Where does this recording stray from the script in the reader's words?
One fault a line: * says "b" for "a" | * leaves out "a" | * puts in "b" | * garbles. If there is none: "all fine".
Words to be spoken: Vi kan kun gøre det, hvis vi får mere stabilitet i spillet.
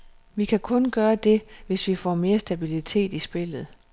all fine